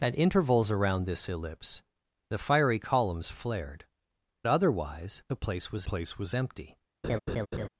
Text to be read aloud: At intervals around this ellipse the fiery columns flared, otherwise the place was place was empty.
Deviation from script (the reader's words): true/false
false